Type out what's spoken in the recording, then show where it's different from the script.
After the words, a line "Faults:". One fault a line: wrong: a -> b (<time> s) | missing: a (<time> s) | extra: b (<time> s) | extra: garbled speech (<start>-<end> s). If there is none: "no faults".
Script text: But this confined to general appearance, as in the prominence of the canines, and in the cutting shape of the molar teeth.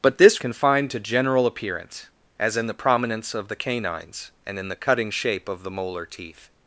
But this confined to general appearance, as in the prominence of the canines, and in the cutting shape of the molar teeth.
Faults:
no faults